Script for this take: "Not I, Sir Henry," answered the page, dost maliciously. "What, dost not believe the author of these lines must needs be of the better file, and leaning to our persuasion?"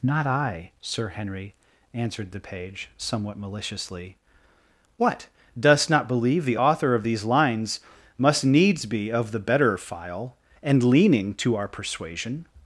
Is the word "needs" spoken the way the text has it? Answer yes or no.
yes